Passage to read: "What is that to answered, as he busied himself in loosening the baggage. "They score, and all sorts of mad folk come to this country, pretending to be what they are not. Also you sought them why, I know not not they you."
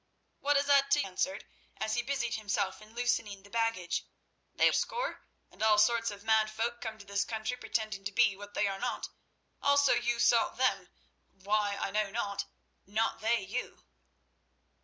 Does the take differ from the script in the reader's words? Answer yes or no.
no